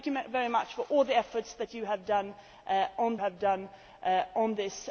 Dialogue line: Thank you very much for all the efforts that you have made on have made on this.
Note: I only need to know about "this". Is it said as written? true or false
true